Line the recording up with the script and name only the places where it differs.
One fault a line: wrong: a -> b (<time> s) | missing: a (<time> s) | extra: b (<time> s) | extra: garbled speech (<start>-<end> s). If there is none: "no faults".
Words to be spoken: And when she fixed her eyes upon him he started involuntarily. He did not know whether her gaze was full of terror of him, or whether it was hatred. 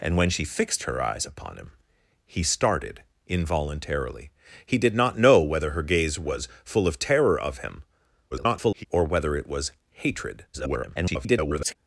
extra: garbled speech (8.3-8.8 s)
extra: garbled speech (10.5-11.8 s)